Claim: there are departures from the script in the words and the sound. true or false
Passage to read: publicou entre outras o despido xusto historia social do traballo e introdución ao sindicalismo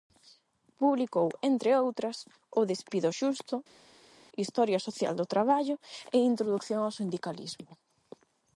false